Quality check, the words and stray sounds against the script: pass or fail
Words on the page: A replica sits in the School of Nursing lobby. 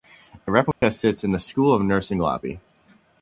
fail